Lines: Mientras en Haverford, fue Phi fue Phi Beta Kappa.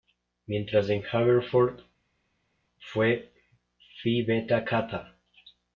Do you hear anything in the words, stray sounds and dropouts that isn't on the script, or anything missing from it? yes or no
yes